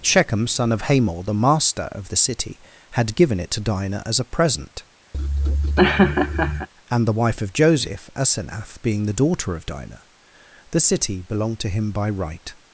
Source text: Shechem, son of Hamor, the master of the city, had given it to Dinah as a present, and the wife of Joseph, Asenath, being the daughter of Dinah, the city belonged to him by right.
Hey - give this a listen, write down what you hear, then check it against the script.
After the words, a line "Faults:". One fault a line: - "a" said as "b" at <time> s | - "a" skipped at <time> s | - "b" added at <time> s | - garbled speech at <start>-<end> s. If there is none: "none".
Shechem, son of Hamor, the master of the city, had given it to Dinah as a present, and the wife of Joseph, Asenath, being the daughter of Dinah, the city belonged to him by right.
Faults:
none